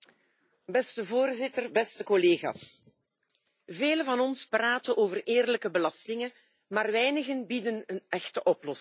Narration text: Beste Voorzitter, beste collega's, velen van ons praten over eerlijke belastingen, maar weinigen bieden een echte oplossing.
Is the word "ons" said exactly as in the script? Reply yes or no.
yes